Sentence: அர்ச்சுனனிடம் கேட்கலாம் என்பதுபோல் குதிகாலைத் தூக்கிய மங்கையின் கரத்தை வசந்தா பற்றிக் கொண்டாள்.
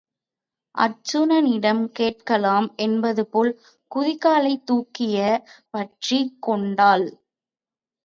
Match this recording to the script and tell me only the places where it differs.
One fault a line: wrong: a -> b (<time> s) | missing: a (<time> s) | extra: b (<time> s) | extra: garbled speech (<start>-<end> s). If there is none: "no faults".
missing: மங்கையின் கரத்தை வசந்தா (5.2 s)